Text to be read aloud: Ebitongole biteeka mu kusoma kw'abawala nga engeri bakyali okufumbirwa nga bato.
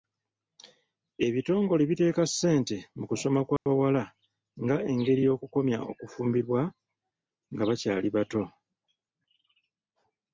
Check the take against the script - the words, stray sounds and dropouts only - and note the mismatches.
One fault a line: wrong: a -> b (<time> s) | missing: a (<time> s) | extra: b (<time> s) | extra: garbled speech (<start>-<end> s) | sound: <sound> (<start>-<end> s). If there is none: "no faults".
extra: ssente (2.3 s)
sound: dropout (3.6-3.7 s)
wrong: bakyali -> y'okukomya (5.3 s)
extra: bakyali (7.7 s)